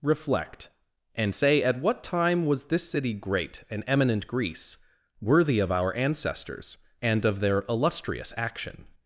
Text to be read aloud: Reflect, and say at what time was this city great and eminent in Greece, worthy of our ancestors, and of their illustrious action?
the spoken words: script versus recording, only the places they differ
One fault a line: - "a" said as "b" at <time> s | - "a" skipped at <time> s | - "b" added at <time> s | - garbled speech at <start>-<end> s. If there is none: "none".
- "in" skipped at 4.3 s